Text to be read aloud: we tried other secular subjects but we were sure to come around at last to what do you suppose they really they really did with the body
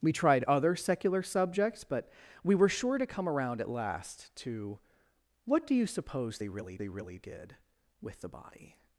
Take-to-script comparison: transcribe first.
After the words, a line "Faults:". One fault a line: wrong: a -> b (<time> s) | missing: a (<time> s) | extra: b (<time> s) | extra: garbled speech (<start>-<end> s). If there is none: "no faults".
we tried other secular subjects but we were sure to come around at last to what do you suppose they really they really did with the body
Faults:
no faults